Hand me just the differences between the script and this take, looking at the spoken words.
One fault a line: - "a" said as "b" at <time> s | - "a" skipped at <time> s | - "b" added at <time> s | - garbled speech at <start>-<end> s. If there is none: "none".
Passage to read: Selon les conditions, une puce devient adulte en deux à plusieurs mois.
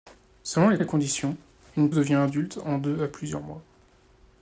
- "les" added at 0.8 s
- "puce" skipped at 1.9 s